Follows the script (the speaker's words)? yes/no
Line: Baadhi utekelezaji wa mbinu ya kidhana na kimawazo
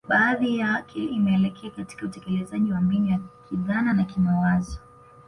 no